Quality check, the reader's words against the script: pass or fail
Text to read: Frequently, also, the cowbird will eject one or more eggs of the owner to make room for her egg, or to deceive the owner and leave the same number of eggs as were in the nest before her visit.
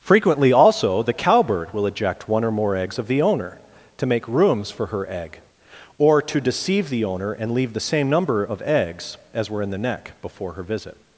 fail